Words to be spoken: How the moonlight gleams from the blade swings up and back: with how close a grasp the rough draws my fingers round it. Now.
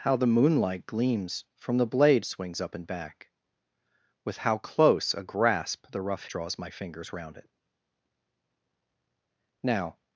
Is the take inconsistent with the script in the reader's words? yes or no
no